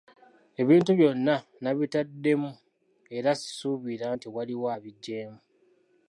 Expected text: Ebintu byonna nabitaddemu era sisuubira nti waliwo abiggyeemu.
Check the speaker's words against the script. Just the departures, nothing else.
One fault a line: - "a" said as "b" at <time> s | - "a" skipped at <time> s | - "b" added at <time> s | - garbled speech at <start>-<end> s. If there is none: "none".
none